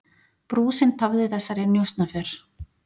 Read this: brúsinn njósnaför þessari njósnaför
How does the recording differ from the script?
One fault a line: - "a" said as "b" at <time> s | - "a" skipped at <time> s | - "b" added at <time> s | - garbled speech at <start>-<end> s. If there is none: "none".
- "njósnaför" said as "tafði" at 1.0 s